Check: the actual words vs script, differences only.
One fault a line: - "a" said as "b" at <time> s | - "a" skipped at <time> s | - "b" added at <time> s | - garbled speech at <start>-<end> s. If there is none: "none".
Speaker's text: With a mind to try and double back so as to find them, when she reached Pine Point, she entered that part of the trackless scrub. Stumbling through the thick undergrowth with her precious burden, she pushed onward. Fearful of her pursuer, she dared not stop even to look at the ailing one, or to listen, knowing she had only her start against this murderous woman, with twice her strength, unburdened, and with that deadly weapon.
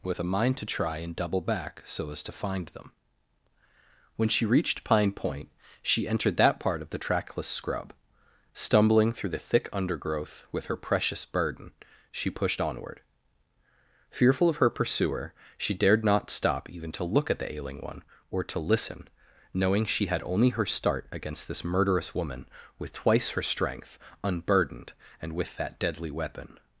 none